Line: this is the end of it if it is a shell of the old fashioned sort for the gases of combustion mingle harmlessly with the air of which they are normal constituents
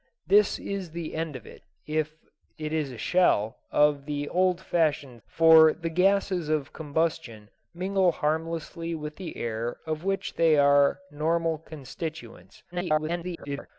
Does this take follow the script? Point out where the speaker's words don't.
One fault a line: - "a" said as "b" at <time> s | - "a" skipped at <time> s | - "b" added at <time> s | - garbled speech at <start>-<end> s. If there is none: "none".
- "sort" skipped at 5.2 s
- garbled speech at 12.7-13.7 s